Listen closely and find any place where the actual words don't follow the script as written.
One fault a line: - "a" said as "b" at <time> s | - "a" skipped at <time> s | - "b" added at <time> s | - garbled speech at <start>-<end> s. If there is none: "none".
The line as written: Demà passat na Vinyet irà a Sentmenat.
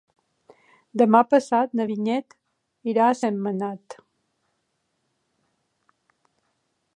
none